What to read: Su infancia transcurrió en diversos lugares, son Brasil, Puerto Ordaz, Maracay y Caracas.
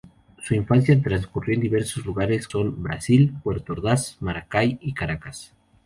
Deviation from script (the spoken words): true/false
false